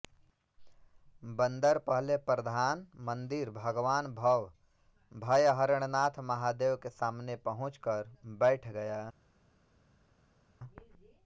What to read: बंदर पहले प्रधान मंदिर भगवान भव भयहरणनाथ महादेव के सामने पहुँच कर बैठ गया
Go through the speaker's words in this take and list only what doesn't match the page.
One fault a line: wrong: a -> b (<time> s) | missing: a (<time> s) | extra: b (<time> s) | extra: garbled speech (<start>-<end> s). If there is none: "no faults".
no faults